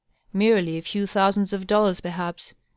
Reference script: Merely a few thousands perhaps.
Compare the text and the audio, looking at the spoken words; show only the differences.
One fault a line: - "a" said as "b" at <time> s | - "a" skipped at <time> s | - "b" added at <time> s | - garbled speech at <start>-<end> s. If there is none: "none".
- "of dollars" added at 1.5 s